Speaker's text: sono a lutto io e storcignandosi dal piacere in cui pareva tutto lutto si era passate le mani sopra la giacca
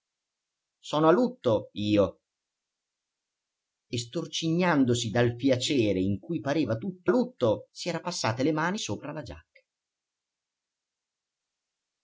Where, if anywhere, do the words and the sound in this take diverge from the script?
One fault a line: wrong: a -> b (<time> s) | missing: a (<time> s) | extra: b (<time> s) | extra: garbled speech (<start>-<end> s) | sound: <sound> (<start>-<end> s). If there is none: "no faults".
no faults